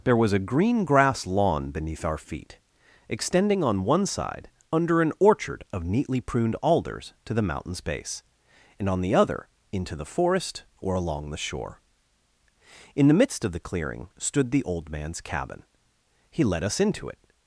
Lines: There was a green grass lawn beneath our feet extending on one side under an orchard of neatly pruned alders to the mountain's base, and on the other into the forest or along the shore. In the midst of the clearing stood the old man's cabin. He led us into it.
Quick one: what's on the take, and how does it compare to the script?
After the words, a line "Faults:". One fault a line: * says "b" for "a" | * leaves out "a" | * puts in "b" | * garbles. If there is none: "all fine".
There was a green grass lawn beneath our feet extending on one side under an orchard of neatly pruned alders to the mountain's base, and on the other into the forest or along the shore. In the midst of the clearing stood the old man's cabin. He led us into it.
Faults:
all fine